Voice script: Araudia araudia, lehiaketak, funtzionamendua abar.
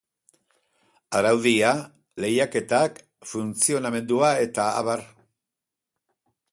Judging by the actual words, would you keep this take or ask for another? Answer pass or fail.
fail